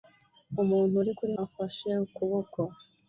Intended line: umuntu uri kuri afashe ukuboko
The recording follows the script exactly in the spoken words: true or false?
true